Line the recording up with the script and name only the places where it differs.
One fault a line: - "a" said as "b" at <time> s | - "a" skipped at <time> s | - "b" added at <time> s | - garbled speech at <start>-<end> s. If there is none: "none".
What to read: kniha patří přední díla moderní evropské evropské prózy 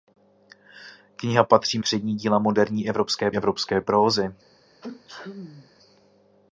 none